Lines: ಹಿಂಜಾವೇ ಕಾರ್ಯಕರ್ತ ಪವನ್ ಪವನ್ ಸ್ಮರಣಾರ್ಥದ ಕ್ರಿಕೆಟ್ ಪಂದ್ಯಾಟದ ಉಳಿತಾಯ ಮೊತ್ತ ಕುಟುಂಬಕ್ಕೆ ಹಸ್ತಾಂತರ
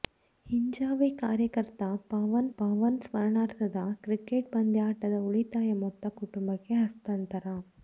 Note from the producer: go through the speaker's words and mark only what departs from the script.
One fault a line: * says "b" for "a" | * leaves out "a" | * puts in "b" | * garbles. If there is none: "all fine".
all fine